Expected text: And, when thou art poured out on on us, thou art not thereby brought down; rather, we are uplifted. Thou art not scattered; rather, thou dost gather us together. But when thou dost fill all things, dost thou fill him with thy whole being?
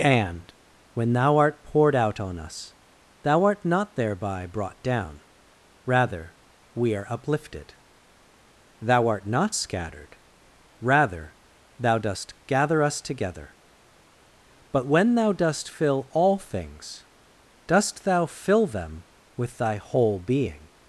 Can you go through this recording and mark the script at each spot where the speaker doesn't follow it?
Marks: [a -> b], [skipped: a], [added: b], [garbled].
And, when thou art poured out on [skipped: on] us, thou art not thereby brought down; rather, we are uplifted. Thou art not scattered; rather, thou dost gather us together. But when thou dost fill all things, dost thou fill [him -> them] with thy whole being?